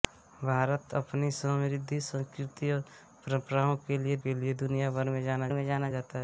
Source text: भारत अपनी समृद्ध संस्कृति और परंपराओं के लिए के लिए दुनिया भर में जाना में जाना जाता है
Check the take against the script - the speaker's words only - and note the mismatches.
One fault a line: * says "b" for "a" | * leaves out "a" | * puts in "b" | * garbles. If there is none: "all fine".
all fine